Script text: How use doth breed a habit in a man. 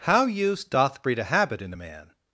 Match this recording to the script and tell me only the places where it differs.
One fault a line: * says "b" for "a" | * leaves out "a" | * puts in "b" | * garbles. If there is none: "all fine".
all fine